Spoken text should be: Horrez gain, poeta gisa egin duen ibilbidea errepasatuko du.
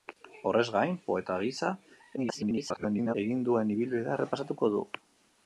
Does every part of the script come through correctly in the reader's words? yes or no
no